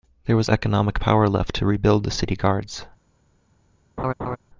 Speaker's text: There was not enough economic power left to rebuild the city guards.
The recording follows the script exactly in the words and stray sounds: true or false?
false